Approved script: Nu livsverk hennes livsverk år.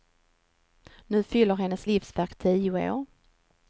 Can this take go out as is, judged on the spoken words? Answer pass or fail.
fail